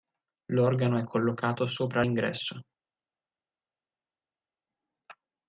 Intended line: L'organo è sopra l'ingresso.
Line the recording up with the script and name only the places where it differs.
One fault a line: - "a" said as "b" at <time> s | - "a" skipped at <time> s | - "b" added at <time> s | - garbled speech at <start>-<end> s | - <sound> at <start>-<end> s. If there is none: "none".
- "collocato" added at 1.0 s